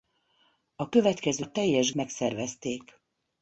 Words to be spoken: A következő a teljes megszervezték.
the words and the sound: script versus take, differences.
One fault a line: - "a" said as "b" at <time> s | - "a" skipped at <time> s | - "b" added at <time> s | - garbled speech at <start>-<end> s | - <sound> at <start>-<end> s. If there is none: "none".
none